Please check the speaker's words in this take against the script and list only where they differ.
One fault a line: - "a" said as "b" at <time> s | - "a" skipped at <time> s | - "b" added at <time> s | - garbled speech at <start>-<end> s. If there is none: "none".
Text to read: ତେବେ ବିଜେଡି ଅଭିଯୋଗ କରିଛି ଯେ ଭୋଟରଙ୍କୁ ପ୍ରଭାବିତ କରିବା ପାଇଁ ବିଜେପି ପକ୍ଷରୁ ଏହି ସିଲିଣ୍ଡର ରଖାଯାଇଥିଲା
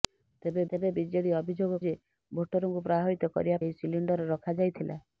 - "ତେବେ" added at 0.7 s
- "କରିଛି" skipped at 1.8 s
- "ପାଇଁ ବିଜେପି ପକ୍ଷରୁ" skipped at 3.6 s